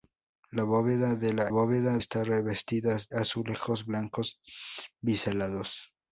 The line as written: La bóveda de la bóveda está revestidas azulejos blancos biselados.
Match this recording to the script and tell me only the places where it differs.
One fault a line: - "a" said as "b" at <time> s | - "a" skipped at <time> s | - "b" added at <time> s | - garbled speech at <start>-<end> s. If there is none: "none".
none